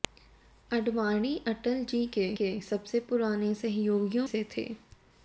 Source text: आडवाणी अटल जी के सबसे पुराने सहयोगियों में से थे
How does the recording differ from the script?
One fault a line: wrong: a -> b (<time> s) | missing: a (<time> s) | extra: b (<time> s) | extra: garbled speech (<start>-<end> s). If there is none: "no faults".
extra: के (2.4 s)
missing: में (4.3 s)